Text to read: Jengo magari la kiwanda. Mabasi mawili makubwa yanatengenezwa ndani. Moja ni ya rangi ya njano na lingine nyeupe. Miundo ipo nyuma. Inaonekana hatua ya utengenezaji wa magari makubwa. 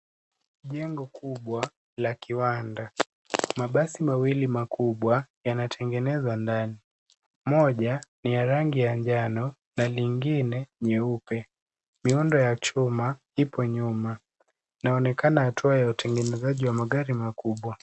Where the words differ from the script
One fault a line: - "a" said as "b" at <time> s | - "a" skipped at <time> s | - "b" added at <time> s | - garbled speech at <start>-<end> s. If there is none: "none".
- "magari" said as "kubwa" at 1.1 s
- "ya chuma" added at 12.4 s